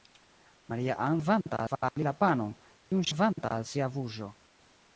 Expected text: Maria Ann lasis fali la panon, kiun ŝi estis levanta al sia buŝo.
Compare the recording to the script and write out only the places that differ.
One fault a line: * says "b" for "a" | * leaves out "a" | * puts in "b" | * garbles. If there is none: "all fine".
* says "levanta" for "lasis"
* leaves out "ŝi estis"